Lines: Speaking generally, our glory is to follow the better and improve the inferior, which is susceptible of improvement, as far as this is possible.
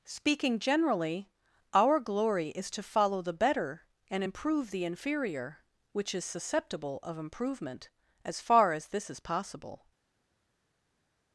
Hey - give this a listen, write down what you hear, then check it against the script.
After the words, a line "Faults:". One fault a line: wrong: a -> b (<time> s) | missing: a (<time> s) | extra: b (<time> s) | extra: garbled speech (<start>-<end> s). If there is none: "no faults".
Speaking generally, our glory is to follow the better and improve the inferior, which is susceptible of improvement, as far as this is possible.
Faults:
no faults